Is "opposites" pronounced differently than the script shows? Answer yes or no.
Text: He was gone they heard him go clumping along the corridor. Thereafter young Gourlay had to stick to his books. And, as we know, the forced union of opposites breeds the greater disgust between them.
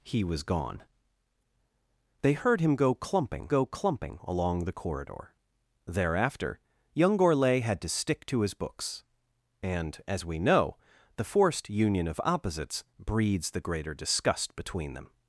no